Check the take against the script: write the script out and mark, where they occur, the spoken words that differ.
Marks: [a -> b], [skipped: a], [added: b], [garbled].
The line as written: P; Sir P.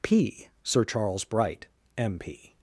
P; Sir [added: Charles Bright M] P.